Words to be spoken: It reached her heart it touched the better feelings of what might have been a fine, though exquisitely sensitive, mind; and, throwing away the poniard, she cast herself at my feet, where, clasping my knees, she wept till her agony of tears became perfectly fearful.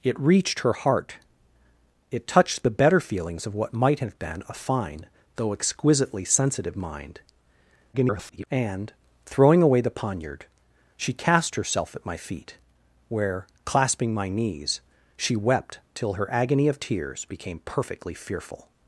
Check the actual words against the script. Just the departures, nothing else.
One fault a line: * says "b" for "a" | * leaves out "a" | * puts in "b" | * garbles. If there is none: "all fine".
* garbles